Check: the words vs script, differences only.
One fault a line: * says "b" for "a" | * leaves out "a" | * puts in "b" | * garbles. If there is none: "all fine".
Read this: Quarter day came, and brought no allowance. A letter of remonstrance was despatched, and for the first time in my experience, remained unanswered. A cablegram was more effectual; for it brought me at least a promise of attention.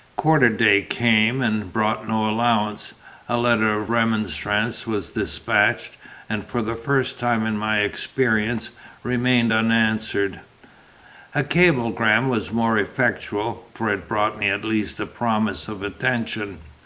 all fine